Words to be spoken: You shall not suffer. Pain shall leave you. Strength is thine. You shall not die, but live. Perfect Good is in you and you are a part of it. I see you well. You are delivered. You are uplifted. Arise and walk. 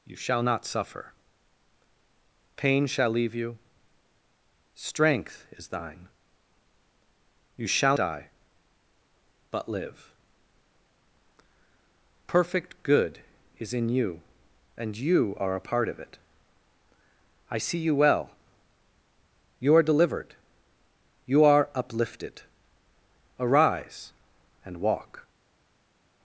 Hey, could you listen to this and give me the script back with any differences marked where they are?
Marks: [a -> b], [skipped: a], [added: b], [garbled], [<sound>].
You shall not suffer. Pain shall leave you. Strength is thine. You shall [skipped: not] die, but live. Perfect Good is in you and you are a part of it. I see you well. You are delivered. You are uplifted. Arise and walk.